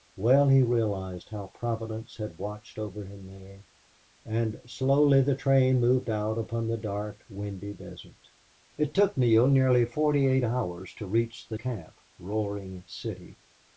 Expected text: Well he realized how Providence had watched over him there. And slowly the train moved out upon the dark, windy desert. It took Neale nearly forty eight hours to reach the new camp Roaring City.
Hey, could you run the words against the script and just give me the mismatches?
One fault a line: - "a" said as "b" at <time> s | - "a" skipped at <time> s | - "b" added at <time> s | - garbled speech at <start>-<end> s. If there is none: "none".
- "new" skipped at 11.6 s